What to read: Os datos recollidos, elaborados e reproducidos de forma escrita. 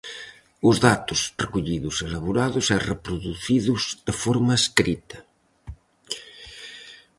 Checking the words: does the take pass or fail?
pass